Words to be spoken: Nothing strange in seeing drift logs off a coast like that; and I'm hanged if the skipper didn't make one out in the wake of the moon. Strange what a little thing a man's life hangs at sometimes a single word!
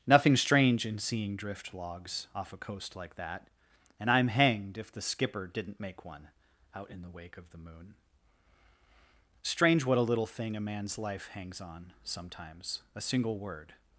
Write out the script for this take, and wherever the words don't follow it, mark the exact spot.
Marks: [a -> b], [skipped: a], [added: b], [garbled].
Nothing strange in seeing drift logs off a coast like that; and I'm hanged if the skipper didn't make one out in the wake of the moon. Strange what a little thing a man's life hangs [at -> on] sometimes a single word!